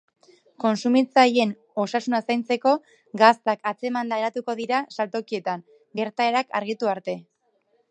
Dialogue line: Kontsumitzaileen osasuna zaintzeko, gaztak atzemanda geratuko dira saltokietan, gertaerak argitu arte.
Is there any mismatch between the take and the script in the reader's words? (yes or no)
no